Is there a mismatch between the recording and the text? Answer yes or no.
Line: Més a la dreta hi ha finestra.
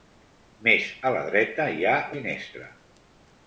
no